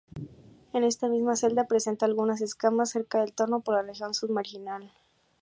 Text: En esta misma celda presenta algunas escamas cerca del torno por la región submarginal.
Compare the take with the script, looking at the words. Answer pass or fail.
pass